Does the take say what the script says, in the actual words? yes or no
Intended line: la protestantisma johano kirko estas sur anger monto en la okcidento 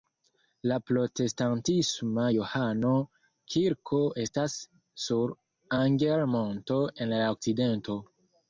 yes